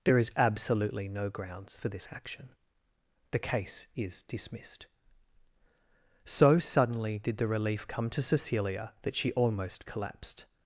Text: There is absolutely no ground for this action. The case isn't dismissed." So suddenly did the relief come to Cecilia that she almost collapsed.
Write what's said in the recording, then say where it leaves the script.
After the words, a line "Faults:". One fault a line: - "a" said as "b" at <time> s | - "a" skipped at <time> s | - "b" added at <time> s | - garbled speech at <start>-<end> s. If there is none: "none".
There is absolutely no grounds for this action. The case is dismissed." So suddenly did the relief come to Cecilia that she almost collapsed.
Faults:
- "ground" said as "grounds" at 1.3 s
- "isn't" said as "is" at 4.0 s